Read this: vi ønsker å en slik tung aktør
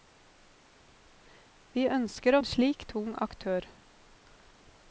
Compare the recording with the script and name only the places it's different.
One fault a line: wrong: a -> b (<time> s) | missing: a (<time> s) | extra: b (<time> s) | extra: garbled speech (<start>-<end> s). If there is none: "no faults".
no faults